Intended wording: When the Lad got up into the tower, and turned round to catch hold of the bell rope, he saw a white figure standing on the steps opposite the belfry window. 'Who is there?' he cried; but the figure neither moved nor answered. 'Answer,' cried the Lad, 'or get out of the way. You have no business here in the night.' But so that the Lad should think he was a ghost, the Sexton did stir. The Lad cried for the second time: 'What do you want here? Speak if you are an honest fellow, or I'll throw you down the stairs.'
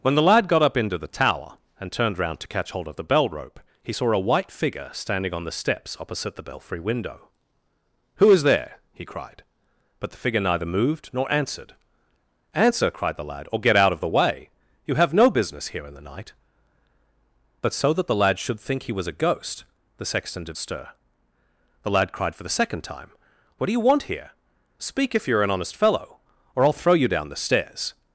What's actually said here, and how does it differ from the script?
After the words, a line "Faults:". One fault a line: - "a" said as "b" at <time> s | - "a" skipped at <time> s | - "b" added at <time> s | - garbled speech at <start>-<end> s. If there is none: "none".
When the Lad got up into the tower, and turned round to catch hold of the bell rope, he saw a white figure standing on the steps opposite the belfry window. 'Who is there?' he cried; but the figure neither moved nor answered. 'Answer,' cried the Lad, 'or get out of the way. You have no business here in the night.' But so that the Lad should think he was a ghost, the Sexton did stir. The Lad cried for the second time: 'What do you want here? Speak if you are an honest fellow, or I'll throw you down the stairs.'
Faults:
none